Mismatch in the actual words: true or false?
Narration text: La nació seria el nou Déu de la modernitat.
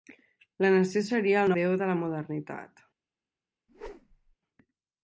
true